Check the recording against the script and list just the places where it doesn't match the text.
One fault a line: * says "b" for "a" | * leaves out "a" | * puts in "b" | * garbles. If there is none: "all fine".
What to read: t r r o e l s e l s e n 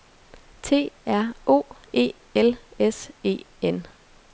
* leaves out "r"
* leaves out "l s e"